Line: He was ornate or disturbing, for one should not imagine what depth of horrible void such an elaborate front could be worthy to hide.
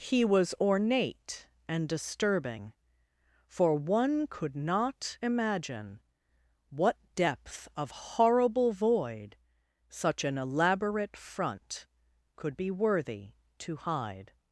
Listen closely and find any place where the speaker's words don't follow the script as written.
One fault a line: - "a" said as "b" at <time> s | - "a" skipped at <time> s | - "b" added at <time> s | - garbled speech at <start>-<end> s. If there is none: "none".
- "or" said as "and" at 1.7 s
- "should" said as "could" at 4.3 s